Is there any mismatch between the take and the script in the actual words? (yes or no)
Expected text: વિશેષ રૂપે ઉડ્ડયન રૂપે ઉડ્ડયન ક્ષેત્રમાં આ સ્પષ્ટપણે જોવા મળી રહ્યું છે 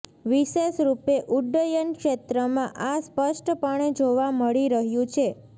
yes